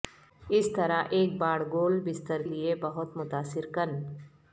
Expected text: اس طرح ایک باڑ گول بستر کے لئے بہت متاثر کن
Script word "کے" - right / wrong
wrong